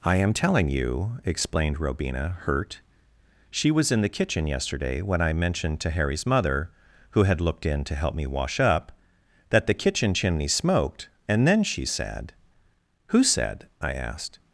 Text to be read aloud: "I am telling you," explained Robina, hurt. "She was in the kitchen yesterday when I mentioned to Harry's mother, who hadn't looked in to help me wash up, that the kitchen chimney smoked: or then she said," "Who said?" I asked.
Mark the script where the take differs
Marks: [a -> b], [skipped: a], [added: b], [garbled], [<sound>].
"I am telling you," explained Robina, hurt. "She was in the kitchen yesterday when I mentioned to Harry's mother, who [hadn't -> had] looked in to help me wash up, that the kitchen chimney smoked: [or -> and] then she said," "Who said?" I asked.